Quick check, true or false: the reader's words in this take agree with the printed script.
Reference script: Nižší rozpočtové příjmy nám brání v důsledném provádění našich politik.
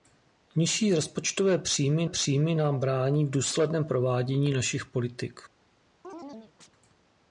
false